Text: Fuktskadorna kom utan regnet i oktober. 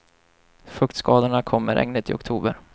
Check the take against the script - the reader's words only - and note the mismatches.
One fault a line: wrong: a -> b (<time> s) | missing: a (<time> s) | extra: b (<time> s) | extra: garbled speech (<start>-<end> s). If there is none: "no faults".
wrong: utan -> med (1.6 s)